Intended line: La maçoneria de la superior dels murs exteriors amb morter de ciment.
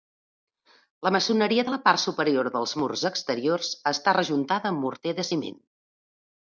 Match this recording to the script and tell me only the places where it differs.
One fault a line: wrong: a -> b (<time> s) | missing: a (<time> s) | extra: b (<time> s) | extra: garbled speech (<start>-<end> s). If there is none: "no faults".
extra: part (1.9 s)
extra: està rejuntada (3.9 s)